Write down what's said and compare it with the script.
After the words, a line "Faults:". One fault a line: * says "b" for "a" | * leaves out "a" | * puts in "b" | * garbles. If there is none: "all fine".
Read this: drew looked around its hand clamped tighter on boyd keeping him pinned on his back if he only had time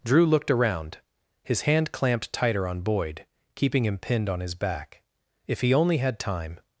drew looked around his hand clamped tighter on boyd keeping him pinned on his back if he only had time
Faults:
* says "his" for "its"